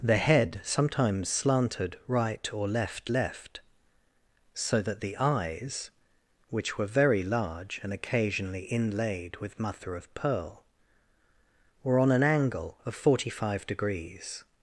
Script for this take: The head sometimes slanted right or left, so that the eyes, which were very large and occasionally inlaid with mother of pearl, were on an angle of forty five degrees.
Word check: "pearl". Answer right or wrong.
right